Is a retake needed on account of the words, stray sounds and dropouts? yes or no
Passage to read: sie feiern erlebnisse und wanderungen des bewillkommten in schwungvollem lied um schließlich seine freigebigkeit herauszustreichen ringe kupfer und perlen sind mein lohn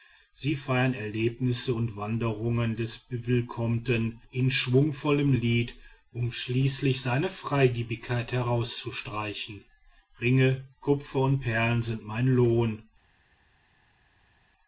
no